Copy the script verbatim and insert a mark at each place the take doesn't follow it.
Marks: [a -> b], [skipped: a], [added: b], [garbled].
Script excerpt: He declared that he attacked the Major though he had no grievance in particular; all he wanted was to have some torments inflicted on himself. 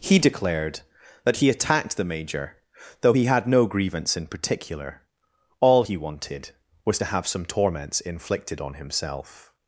He declared that he attacked the Major though he had no grievance in particular; all he wanted was to have some torments inflicted on himself.